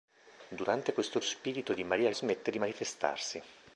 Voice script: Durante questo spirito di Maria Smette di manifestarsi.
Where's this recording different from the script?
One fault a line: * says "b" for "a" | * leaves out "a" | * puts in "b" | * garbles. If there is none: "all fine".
all fine